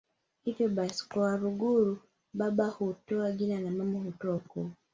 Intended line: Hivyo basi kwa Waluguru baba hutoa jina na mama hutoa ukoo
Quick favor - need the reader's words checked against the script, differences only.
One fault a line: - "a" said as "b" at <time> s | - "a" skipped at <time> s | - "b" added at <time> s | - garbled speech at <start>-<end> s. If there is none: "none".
none